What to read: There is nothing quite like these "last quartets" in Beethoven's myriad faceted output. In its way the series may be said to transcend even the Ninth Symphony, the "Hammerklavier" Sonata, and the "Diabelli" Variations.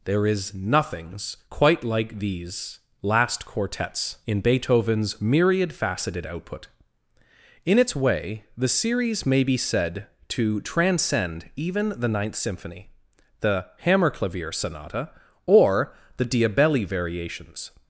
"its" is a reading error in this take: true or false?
false